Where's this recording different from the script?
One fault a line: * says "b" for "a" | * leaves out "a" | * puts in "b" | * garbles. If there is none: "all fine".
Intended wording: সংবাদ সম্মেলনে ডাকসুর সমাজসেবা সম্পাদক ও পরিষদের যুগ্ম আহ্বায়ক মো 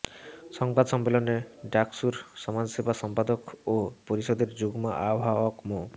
all fine